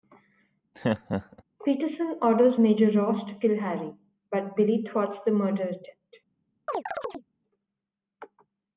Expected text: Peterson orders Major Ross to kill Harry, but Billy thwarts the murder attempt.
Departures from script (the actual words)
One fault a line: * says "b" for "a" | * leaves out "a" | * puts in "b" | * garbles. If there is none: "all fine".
all fine